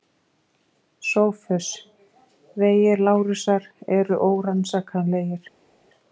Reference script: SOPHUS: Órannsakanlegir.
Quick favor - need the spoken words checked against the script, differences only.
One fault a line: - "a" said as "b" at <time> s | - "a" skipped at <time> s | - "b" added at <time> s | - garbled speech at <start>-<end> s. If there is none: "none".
- "Vegir Lárusar eru" added at 2.6 s